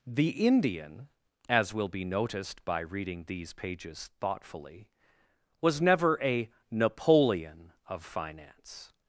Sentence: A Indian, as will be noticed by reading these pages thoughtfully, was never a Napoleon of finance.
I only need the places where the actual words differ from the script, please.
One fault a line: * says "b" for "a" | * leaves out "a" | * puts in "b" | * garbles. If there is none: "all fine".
* says "The" for "A"